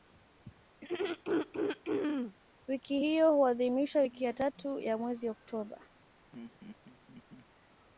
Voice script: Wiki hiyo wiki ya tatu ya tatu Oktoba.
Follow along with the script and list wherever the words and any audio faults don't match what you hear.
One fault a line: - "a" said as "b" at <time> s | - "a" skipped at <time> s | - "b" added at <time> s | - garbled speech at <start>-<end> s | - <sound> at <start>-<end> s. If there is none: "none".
- throat clearing at 0.8-2.4 s
- "huadhimishwa" added at 3.3 s
- "tatu" said as "mwezi" at 5.0 s
- laugh at 6.3-7.5 s